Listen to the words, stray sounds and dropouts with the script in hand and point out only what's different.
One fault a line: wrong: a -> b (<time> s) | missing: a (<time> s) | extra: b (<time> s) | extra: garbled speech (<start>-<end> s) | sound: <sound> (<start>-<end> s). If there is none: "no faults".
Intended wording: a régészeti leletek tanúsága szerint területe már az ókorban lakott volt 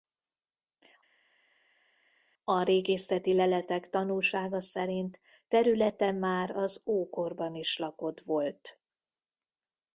extra: is (7.5 s)